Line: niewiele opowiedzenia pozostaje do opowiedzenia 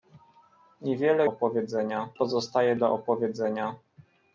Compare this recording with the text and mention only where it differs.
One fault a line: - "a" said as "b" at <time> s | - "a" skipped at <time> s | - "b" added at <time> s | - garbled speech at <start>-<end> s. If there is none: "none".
none